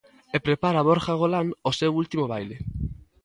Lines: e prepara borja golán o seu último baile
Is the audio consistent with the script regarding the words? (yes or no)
yes